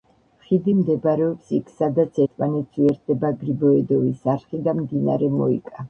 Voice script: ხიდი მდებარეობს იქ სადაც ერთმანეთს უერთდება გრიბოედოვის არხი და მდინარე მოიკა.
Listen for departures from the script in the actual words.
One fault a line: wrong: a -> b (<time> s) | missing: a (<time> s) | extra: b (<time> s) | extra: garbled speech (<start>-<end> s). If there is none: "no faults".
no faults